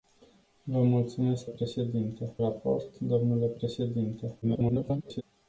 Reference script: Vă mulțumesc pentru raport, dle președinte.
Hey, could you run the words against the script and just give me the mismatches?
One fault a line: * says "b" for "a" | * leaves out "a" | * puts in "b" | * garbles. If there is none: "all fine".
* says "președinte" for "pentru"
* garbles